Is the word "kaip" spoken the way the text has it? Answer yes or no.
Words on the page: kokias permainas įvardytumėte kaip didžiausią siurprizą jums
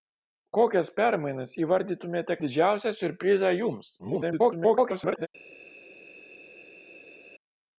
no